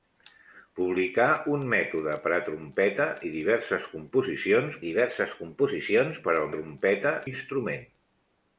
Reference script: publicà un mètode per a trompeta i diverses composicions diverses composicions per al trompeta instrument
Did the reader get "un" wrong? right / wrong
right